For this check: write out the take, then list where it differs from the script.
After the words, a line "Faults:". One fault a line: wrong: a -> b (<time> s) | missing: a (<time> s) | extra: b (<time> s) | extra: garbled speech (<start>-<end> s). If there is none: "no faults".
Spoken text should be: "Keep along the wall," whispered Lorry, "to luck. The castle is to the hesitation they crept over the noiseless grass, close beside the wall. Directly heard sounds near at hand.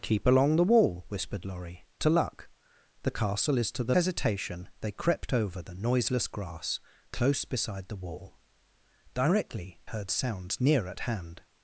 "Keep along the wall," whispered Lorry, "to luck. The castle is to the hesitation they crept over the noiseless grass, close beside the wall. Directly heard sounds near at hand.
Faults:
no faults